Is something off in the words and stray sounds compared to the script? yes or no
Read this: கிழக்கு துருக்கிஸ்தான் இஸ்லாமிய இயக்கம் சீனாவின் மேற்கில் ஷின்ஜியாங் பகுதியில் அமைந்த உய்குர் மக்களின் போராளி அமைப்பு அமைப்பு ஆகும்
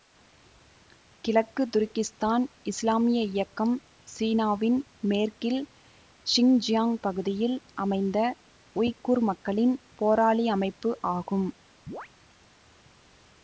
yes